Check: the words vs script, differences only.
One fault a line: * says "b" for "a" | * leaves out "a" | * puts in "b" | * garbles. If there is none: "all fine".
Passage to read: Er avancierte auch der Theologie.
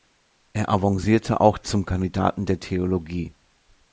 * puts in "zum Kandidaten"